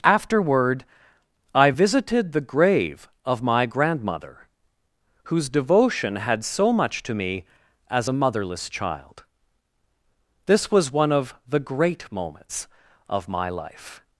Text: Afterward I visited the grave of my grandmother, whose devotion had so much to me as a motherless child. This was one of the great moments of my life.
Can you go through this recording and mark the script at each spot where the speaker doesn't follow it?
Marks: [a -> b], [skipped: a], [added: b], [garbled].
Afterward I visited the grave of my grandmother, whose devotion had so much to me as a motherless child. This was one of the great moments of my life.